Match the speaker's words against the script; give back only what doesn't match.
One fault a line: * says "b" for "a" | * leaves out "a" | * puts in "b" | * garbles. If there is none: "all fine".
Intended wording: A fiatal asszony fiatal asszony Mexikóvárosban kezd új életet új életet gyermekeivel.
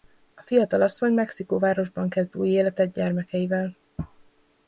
* leaves out "fiatal asszony"
* leaves out "új életet"